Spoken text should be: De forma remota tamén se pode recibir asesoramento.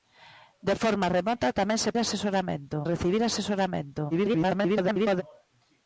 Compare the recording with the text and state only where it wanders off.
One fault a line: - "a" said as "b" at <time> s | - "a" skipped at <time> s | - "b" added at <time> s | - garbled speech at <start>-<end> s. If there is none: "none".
- "pode" said as "asesoramento" at 2.0 s
- garbled speech at 4.1-5.2 s